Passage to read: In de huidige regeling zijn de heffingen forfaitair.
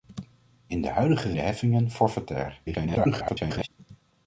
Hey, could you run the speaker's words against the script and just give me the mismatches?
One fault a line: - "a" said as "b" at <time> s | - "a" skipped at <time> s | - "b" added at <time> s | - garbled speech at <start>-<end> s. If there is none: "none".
- "regeling zijn" skipped at 1.3 s
- garbled speech at 2.7-3.7 s